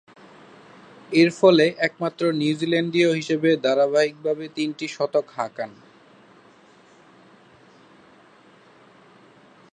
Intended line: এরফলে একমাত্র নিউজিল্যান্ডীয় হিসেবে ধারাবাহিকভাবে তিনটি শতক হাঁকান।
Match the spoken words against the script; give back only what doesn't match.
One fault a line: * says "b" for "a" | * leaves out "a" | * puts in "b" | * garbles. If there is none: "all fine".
all fine